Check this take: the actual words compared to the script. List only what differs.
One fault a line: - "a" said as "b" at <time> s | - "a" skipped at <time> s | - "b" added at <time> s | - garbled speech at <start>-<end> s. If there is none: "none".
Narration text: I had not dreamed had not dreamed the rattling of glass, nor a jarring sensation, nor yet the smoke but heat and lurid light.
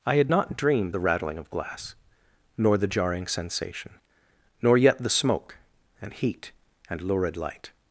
- "had not dreamed" skipped at 0.9 s
- "a" said as "the" at 2.8 s
- "but" said as "and" at 6.0 s